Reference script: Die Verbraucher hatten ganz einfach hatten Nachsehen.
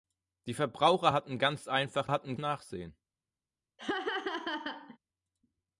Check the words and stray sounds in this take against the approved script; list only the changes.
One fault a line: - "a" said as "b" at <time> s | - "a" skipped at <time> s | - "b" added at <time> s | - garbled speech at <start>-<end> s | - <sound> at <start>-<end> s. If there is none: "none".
- laugh at 3.8-5.0 s